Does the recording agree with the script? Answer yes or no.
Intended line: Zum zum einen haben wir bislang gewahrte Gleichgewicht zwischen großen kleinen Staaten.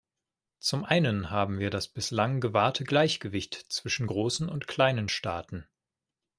no